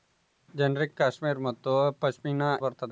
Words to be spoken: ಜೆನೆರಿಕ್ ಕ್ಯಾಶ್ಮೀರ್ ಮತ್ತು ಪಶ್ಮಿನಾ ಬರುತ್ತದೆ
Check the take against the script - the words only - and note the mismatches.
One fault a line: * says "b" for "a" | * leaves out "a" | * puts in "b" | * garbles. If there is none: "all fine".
all fine